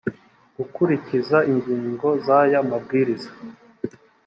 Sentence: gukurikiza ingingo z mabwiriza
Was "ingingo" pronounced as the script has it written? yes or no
yes